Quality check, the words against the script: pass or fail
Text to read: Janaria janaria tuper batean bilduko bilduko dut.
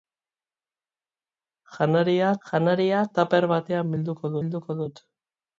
pass